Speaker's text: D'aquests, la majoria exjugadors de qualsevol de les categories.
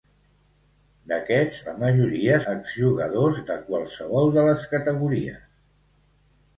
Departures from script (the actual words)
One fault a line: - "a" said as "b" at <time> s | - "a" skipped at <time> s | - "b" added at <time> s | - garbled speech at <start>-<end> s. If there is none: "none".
none